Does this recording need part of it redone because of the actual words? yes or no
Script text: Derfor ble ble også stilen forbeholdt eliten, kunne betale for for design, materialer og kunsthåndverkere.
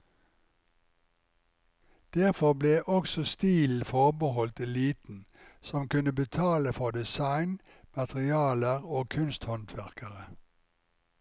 yes